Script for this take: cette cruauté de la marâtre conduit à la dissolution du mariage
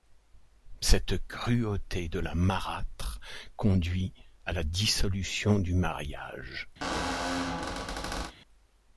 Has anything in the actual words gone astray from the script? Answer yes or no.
no